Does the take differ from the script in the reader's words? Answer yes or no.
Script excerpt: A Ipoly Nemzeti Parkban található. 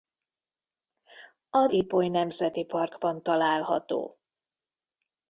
no